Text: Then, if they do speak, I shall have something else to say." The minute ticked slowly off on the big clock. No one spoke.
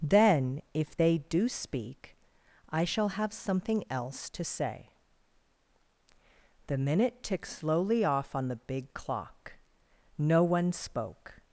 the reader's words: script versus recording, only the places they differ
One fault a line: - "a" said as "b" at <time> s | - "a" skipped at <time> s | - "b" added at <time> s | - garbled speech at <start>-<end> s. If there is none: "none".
none